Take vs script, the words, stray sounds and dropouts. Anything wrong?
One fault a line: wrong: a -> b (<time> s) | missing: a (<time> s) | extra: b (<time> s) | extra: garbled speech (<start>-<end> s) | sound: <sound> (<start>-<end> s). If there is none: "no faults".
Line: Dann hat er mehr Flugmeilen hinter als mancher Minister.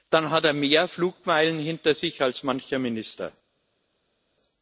extra: sich (1.9 s)